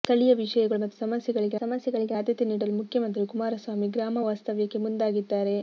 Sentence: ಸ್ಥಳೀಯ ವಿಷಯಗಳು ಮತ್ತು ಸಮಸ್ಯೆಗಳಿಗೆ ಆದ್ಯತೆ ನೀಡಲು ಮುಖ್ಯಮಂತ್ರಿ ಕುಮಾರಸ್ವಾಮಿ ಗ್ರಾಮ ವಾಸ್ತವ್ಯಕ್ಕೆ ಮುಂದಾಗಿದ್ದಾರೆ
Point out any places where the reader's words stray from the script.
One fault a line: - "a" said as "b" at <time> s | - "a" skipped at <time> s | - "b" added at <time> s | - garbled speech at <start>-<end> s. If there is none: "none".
- "ಸಮಸ್ಯೆಗಳಿಗೆ" added at 1.6 s